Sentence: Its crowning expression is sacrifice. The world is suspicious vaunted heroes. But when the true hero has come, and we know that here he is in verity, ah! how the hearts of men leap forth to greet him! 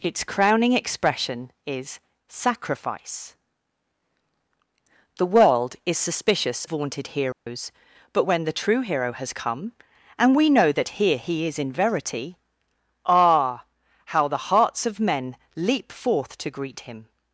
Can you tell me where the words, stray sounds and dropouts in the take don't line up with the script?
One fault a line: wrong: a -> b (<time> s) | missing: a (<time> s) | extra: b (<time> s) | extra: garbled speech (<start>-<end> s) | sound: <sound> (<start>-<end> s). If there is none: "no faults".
sound: dropout (7.3-7.5 s)